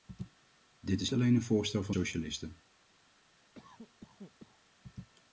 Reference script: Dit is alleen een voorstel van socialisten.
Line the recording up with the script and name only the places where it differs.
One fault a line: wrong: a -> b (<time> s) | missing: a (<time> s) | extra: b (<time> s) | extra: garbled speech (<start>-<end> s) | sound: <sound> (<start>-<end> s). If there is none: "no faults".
sound: cough (3.5-4.6 s)